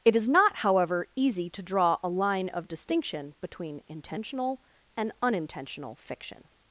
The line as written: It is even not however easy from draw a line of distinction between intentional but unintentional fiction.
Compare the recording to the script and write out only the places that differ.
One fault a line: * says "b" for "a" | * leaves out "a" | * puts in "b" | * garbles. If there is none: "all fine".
* leaves out "even"
* says "to" for "from"
* says "and" for "but"